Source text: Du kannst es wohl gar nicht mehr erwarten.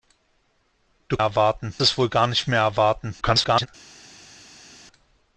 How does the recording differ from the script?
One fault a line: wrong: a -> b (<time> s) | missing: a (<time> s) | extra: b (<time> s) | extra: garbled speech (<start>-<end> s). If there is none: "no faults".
wrong: kannst -> erwarten (1.2 s)
extra: garbled speech (3.2-3.7 s)